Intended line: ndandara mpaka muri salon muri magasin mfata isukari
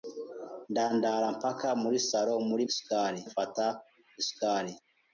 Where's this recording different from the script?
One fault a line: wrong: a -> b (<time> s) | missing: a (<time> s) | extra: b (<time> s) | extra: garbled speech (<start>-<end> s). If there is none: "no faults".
wrong: magasin -> isukari (2.7 s)